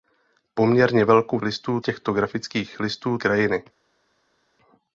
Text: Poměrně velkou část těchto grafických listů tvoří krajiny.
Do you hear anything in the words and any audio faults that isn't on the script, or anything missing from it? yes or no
yes